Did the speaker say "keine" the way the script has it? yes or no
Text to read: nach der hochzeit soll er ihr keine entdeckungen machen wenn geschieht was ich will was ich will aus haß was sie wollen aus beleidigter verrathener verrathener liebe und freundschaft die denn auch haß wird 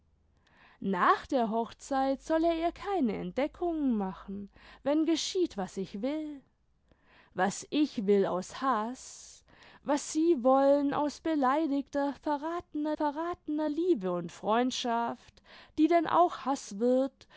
yes